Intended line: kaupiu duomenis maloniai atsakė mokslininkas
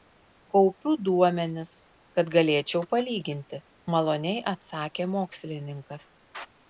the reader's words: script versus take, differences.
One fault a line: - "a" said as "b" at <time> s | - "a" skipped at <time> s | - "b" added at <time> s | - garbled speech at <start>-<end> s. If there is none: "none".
- "kad galėčiau palyginti" added at 2.2 s